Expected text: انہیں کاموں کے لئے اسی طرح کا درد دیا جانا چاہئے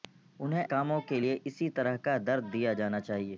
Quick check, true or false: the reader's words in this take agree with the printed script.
true